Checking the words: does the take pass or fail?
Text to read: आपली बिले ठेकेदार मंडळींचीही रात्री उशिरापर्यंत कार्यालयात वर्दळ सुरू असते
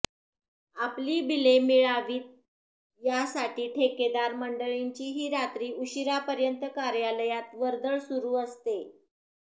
fail